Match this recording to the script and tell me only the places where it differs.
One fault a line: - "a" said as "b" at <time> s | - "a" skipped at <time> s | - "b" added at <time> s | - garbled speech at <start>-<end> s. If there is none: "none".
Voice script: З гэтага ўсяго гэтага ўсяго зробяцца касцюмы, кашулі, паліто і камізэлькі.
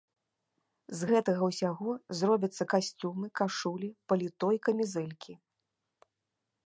- "гэтага ўсяго" skipped at 1.9 s